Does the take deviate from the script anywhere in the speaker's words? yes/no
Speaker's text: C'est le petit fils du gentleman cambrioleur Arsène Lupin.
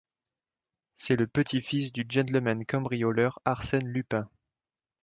no